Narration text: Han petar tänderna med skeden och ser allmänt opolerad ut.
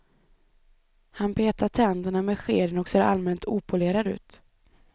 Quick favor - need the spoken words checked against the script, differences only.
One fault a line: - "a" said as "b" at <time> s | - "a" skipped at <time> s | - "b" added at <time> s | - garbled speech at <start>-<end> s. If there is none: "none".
none